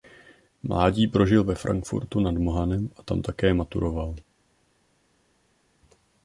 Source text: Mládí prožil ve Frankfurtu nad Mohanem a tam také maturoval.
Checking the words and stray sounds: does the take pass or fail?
pass